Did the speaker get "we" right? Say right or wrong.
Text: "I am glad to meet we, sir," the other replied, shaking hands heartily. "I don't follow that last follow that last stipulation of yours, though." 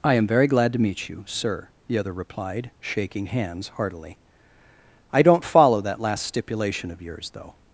wrong